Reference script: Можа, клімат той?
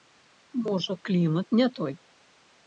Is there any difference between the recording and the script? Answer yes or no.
yes